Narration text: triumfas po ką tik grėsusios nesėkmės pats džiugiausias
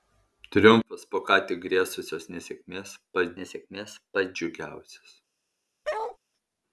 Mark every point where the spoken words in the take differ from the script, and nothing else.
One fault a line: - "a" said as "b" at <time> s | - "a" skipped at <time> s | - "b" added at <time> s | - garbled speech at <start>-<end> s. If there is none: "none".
- "nesėkmės pats" added at 3.4 s